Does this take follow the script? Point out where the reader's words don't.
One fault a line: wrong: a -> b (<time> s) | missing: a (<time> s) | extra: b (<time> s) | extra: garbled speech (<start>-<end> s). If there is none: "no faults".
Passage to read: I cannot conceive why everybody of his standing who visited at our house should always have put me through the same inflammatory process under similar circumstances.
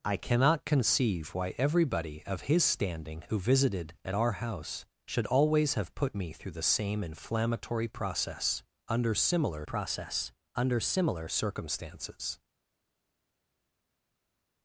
extra: process under similar (9.6 s)